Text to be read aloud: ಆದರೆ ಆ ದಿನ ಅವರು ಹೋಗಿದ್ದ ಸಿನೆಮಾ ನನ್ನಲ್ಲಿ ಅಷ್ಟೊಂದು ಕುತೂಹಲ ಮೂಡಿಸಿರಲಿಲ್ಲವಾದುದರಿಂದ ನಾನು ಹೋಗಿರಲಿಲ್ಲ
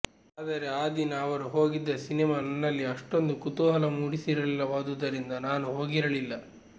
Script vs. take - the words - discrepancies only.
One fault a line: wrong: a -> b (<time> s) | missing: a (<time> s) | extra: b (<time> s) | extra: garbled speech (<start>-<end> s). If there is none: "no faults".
no faults